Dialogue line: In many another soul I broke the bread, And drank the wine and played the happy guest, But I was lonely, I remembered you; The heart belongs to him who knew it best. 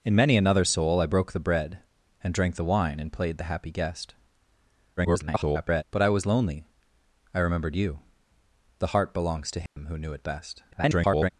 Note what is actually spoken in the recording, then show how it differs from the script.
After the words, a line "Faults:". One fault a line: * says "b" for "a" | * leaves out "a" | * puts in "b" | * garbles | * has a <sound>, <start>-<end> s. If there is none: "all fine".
In many another soul I broke the bread, And drank the wine and played the happy guest, [garbled] But I was lonely, I remembered you; The heart belongs to him who knew it best. [garbled]
Faults:
* garbles
* has a dropout, 9.7-9.8 s
* garbles